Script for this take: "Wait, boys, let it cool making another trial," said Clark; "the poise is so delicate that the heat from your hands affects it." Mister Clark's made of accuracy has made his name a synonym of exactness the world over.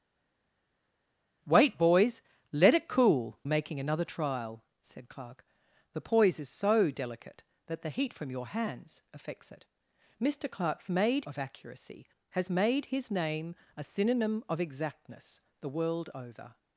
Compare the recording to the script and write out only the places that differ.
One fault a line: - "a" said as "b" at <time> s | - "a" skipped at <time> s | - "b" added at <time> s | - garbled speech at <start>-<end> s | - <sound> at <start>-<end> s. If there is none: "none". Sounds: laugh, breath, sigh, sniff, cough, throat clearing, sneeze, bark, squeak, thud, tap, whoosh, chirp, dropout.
none